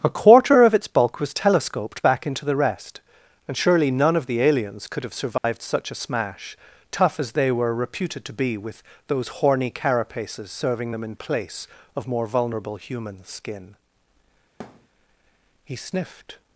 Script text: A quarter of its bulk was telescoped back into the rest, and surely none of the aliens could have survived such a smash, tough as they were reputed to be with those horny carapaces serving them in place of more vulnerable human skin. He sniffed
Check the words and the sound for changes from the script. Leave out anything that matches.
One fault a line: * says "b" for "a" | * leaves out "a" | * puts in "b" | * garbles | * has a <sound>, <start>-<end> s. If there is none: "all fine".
* has a dropout, 5.4-5.4 s
* has a thud, 14.6-14.9 s